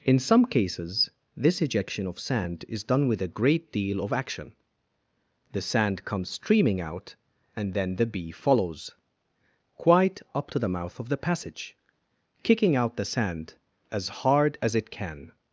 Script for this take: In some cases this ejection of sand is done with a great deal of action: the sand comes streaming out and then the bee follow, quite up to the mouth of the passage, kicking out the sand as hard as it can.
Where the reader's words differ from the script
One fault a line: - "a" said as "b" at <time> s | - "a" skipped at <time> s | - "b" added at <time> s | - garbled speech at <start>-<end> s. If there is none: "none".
- "follow" said as "follows" at 8.3 s